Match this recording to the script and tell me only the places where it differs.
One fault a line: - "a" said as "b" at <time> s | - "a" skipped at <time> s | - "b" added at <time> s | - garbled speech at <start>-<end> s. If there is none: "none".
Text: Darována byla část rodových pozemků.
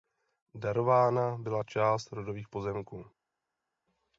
none